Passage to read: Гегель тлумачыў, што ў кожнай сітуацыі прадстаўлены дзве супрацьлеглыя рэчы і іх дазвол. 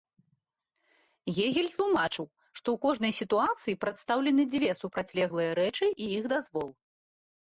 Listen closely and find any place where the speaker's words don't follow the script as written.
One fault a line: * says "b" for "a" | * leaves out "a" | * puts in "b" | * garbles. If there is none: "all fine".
all fine